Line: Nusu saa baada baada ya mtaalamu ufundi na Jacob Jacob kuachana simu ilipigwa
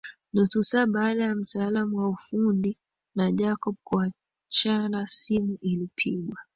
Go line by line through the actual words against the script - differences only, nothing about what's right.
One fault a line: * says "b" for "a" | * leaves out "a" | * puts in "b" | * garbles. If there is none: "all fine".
* leaves out "baada"
* puts in "wa"
* leaves out "Jacob"